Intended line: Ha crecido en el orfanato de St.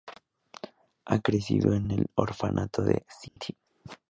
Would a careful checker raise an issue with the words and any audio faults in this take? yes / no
yes